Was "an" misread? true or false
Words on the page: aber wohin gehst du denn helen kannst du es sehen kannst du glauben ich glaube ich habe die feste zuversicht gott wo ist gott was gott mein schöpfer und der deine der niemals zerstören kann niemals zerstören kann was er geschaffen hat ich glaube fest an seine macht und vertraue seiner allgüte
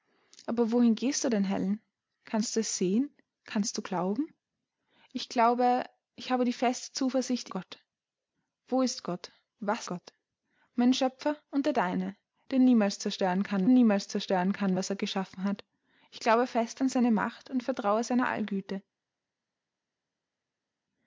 false